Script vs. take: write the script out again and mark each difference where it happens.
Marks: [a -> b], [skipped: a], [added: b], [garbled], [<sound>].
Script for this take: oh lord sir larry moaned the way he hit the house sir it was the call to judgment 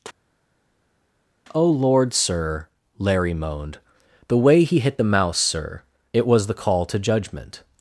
oh lord sir larry moaned the way he hit the [house -> mouse] sir it was the call to judgment